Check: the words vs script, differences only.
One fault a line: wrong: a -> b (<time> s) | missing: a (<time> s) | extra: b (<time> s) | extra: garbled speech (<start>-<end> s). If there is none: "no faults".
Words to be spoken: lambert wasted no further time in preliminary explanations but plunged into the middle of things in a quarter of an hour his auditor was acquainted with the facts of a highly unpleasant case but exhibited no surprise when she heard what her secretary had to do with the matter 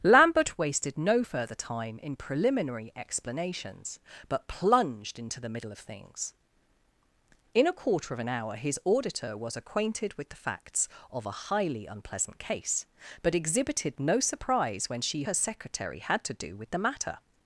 missing: heard what (15.2 s)